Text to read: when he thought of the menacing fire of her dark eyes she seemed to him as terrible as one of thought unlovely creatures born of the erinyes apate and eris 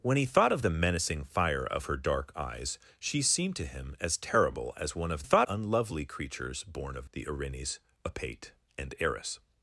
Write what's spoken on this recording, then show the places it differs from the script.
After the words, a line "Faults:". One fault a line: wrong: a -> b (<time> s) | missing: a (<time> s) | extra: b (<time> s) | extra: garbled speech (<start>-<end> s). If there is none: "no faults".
when he thought of the menacing fire of her dark eyes she seemed to him as terrible as one of thought unlovely creatures born of the erinyes apate and eris
Faults:
no faults